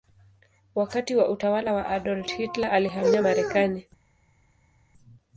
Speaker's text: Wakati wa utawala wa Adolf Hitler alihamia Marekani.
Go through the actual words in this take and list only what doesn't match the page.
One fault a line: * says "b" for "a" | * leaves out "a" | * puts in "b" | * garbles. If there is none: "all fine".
all fine